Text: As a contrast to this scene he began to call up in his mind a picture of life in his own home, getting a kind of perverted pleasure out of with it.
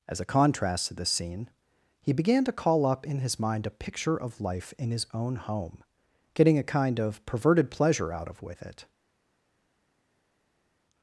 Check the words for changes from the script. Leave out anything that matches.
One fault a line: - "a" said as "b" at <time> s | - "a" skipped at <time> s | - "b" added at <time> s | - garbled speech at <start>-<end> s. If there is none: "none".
none